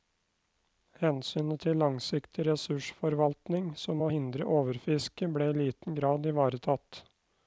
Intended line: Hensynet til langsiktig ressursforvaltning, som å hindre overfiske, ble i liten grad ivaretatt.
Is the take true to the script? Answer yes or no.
yes